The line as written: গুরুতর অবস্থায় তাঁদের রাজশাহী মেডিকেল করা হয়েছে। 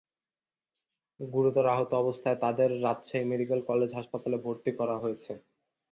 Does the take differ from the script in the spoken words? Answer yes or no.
yes